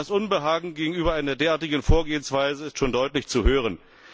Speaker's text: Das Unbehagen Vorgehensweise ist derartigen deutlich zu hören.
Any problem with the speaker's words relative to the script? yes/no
yes